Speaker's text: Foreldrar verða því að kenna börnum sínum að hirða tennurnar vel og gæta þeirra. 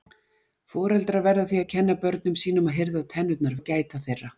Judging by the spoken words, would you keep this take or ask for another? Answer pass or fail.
fail